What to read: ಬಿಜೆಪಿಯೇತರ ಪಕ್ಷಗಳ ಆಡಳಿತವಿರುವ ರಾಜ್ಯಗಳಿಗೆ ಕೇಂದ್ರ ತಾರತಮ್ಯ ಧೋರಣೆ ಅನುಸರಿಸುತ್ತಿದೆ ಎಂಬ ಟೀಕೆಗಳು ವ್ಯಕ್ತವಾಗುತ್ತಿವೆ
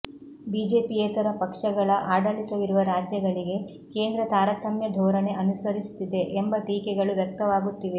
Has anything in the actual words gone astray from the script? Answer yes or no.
no